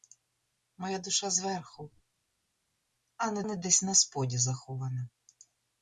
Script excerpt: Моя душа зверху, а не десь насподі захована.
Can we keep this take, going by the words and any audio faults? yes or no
no